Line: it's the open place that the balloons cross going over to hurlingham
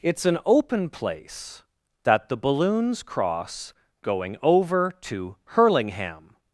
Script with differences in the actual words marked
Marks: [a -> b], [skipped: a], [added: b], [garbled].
it's [the -> an] open place that the balloons cross going over to hurlingham